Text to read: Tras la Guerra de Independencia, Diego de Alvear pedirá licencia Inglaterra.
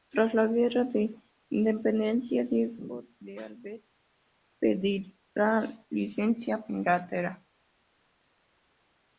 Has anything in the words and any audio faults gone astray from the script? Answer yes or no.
no